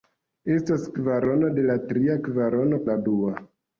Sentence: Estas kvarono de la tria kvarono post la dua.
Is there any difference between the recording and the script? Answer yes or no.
yes